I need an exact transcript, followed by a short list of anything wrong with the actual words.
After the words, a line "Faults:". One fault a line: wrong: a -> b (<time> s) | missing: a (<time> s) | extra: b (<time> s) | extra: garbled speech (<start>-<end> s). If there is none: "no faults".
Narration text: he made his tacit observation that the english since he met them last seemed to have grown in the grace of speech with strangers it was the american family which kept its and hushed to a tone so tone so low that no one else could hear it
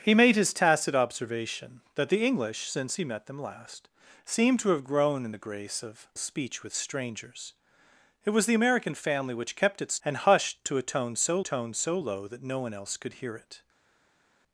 he made his tacit observation that the english since he met them last seemed to have grown in the grace of speech with strangers it was the american family which kept its and hushed to a tone so tone so low that no one else could hear it
Faults:
no faults